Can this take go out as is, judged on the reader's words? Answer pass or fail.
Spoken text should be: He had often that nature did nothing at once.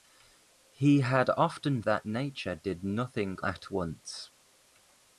pass